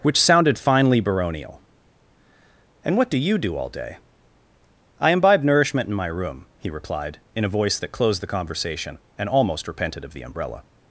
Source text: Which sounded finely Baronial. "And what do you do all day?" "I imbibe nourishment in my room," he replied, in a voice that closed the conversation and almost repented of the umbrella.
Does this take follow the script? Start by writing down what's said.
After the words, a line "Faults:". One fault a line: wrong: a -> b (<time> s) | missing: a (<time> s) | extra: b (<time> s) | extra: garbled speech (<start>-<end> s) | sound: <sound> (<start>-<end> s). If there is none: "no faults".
Which sounded finely Baronial. "And what do you do all day?" "I imbibe nourishment in my room," he replied, in a voice that closed the conversation and almost repented of the umbrella.
Faults:
no faults